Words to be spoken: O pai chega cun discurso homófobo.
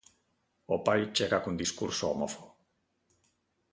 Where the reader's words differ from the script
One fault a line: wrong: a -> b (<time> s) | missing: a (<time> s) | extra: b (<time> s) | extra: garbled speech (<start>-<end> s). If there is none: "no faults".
no faults